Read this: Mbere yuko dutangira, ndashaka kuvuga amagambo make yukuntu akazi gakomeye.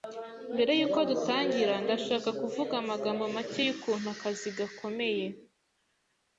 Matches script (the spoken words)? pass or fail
pass